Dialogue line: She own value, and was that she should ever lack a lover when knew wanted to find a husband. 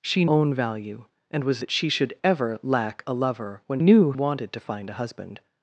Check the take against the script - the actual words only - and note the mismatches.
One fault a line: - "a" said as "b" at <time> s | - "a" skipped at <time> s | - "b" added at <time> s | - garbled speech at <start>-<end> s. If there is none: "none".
none